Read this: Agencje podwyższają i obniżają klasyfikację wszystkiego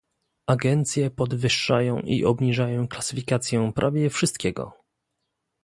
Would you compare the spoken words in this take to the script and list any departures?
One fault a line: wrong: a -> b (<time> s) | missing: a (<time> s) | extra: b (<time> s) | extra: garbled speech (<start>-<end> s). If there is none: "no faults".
extra: prawie (3.8 s)